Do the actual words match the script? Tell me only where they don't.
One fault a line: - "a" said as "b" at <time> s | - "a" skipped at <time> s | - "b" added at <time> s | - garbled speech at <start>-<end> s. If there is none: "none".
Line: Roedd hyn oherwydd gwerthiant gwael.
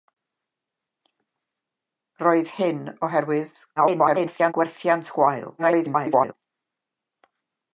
- garbled speech at 3.8-4.5 s
- garbled speech at 5.6-6.3 s